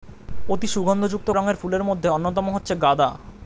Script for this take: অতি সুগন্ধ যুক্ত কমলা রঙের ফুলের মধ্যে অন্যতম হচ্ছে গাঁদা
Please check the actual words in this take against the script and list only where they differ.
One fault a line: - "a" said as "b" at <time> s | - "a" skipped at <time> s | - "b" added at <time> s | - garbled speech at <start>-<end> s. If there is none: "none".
- "কমলা" skipped at 1.3 s